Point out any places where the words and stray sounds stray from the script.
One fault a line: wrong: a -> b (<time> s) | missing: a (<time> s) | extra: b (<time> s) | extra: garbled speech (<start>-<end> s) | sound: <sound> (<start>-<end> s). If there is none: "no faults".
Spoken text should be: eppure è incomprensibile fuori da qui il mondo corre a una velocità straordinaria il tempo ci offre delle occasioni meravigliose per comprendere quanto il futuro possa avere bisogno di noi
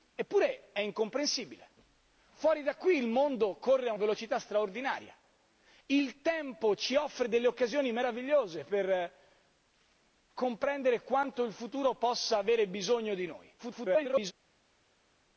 missing: una (3.9 s)
extra: garbled speech (13.6-14.3 s)